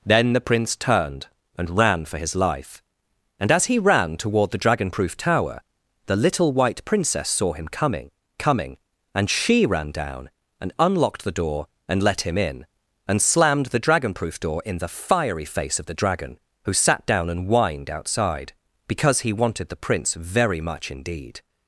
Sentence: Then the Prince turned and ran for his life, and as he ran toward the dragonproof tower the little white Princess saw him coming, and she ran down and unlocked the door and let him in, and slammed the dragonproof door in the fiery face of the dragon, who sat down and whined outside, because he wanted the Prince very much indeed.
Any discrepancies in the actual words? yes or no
yes